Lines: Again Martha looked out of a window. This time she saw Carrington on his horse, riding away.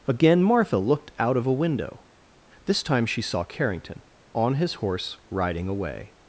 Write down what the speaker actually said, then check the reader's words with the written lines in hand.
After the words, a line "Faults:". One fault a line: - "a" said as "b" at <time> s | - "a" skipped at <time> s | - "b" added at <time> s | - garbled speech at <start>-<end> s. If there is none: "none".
Again Martha looked out of a window. This time she saw Carrington on his horse, riding away.
Faults:
none